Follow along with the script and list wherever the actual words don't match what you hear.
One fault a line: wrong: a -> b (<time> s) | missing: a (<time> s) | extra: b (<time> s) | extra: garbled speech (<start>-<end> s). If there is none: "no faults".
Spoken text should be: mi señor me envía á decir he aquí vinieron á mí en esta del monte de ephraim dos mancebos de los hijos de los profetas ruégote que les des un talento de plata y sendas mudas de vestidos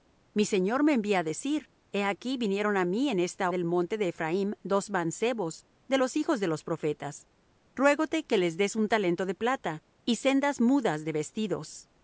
no faults